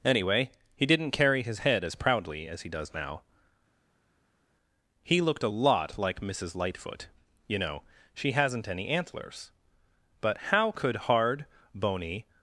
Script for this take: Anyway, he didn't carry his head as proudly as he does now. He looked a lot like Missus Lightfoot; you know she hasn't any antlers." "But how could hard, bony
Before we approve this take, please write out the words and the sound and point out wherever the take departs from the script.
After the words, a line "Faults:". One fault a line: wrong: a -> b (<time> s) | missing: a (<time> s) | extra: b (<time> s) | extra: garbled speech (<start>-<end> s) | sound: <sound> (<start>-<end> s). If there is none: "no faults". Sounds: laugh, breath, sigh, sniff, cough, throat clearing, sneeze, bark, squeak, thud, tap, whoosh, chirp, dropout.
Anyway, he didn't carry his head as proudly as he does now. He looked a lot like Missus Lightfoot; you know she hasn't any antlers." "But how could hard, bony
Faults:
no faults